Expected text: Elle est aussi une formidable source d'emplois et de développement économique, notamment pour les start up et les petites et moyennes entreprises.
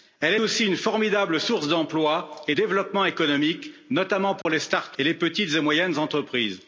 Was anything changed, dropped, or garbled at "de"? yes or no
yes